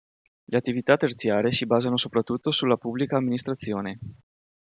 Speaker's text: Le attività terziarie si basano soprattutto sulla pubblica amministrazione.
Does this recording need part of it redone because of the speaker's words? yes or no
no